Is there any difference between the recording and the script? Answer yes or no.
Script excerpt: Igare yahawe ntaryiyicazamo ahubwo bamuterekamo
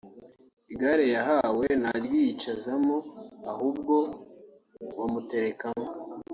no